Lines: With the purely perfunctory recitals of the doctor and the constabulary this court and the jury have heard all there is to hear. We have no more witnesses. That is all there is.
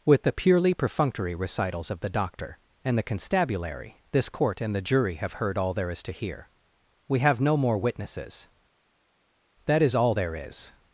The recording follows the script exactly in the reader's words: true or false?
true